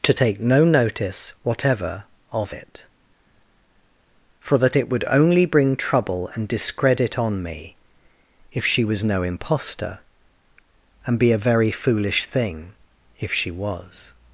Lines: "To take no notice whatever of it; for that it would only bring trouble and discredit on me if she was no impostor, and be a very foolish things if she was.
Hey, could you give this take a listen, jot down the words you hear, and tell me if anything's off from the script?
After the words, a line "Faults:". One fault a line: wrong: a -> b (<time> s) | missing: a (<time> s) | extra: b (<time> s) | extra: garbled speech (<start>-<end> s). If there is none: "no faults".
"To take no notice whatever of it; for that it would only bring trouble and discredit on me if she was no impostor, and be a very foolish thing if she was.
Faults:
wrong: things -> thing (12.2 s)